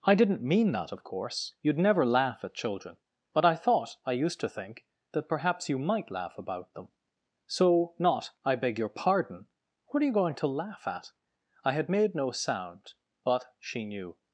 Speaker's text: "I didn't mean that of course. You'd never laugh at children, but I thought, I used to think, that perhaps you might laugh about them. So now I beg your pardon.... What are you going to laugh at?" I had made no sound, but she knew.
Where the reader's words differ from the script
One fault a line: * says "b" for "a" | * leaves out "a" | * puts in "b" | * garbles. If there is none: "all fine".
* says "not" for "now"